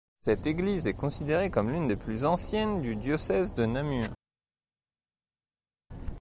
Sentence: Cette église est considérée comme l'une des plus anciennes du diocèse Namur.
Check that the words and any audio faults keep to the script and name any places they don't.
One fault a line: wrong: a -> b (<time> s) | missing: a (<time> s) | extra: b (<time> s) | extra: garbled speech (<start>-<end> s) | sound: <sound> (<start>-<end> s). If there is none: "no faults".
extra: de (3.6 s)